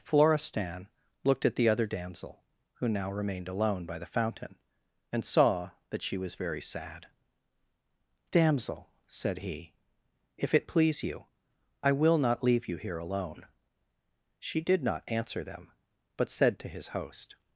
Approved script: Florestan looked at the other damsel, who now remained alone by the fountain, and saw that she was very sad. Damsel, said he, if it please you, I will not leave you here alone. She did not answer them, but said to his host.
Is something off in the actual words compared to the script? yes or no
no